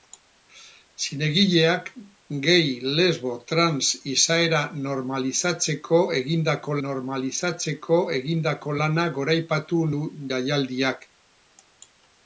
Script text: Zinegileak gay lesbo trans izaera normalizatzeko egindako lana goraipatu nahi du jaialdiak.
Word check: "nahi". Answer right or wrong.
wrong